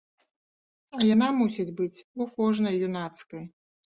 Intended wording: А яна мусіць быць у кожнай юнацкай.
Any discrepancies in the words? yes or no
no